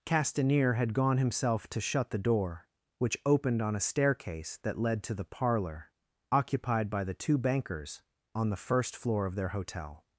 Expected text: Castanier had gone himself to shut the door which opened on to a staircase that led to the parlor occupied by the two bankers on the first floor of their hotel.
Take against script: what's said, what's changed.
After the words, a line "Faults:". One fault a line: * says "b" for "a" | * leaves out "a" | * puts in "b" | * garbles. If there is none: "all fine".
Castanier had gone himself to shut the door which opened on a staircase that led to the parlor occupied by the two bankers on the first floor of their hotel.
Faults:
* leaves out "to"